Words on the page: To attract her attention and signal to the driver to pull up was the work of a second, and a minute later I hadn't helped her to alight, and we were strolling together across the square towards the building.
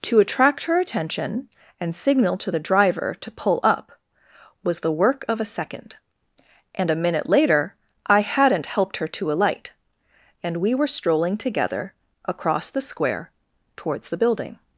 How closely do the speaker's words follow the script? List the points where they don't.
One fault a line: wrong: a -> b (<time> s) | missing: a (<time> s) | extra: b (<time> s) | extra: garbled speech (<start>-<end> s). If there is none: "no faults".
no faults